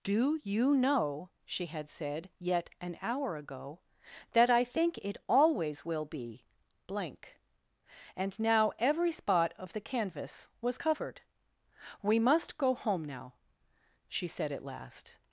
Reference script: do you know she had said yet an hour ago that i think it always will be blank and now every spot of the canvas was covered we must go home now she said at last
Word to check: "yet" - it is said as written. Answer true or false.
true